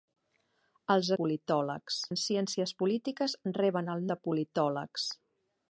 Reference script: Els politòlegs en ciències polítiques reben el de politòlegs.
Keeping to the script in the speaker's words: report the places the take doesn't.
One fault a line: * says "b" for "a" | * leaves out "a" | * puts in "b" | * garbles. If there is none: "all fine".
all fine